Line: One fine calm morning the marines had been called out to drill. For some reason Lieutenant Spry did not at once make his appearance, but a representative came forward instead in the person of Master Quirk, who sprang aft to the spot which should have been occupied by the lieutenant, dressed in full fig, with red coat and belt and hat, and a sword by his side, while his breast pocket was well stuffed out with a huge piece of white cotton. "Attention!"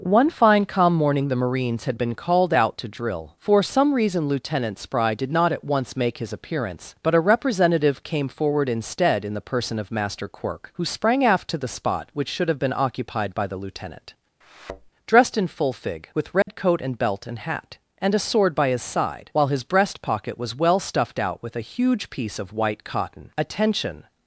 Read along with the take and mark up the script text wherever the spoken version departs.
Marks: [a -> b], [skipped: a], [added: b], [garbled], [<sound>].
One fine calm morning the marines had been called out to drill. For some reason Lieutenant Spry did not at once make his appearance, but a representative came forward instead in the person of Master Quirk, who sprang aft to the spot which should have been occupied by the lieutenant, [thud] dressed in full fig, with red [dropout] coat and belt and hat, and a sword by his side, while his breast pocket was well stuffed out with a huge piece of white cotton. "Attention!"